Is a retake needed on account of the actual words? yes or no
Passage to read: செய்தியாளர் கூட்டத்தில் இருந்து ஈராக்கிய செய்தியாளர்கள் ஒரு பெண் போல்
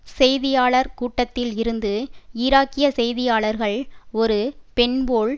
no